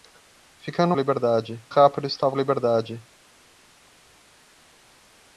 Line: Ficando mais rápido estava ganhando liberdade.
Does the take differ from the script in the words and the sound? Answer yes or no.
yes